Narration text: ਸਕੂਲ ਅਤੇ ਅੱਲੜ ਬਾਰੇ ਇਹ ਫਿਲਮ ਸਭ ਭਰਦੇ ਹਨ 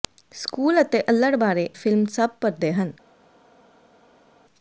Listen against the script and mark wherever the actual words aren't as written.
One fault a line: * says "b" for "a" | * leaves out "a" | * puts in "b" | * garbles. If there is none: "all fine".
* leaves out "ਇਹ"